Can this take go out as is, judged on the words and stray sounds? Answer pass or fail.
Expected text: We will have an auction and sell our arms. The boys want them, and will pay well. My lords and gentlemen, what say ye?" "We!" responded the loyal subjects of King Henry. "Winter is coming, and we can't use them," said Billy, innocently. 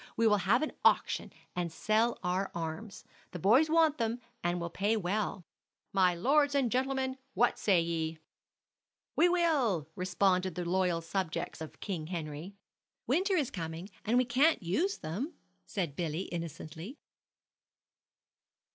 fail